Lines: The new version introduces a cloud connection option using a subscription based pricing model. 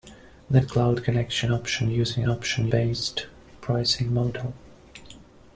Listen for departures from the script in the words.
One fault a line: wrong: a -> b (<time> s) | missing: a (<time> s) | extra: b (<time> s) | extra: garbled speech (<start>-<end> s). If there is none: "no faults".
missing: new version introduces (0.6 s)
wrong: subscription -> option (2.3 s)